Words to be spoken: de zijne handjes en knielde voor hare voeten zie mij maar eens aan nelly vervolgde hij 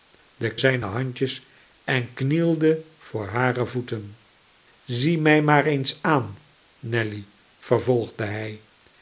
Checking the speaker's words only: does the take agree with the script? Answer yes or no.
yes